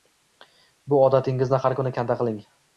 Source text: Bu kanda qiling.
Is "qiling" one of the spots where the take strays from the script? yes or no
no